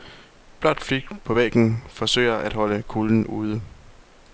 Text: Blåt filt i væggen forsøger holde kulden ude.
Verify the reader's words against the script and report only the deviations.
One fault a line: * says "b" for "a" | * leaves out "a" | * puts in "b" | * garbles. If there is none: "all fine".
* says "på" for "i"
* puts in "at"